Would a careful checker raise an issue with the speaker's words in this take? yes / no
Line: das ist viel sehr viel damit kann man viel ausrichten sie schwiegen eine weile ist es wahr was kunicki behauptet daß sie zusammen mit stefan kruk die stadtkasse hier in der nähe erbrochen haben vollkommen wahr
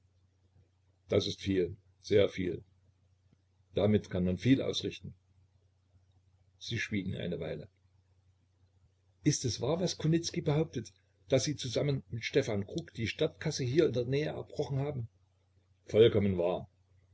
no